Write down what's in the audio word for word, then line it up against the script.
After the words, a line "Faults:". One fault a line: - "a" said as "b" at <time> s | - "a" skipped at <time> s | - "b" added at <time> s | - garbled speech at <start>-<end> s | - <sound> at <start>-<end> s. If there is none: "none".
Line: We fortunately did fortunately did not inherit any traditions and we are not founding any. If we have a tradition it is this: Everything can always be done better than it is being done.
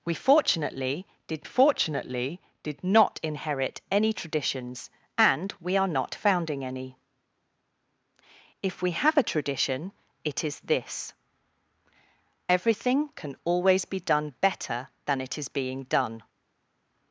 We fortunately did fortunately did not inherit any traditions and we are not founding any. If we have a tradition it is this: Everything can always be done better than it is being done.
Faults:
none